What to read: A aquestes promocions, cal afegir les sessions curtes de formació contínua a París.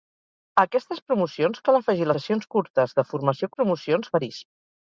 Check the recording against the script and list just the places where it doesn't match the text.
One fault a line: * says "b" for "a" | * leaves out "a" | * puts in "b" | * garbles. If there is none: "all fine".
* leaves out "les"
* says "promocions" for "contínua"